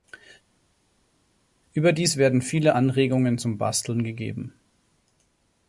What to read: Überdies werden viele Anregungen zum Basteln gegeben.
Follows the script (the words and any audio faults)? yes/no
yes